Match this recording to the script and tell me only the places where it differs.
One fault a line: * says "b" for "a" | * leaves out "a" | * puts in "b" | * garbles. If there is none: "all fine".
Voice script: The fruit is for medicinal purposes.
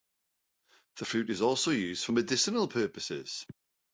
* puts in "also used"